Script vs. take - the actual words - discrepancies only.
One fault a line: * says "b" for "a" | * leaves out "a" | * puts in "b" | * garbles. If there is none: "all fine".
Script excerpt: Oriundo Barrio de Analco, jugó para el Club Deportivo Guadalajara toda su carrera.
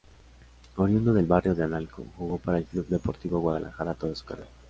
* puts in "del"